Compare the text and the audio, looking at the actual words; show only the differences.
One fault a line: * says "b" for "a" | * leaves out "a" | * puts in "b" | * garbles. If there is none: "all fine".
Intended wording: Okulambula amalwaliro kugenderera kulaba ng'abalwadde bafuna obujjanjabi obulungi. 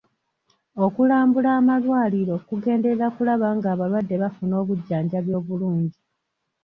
all fine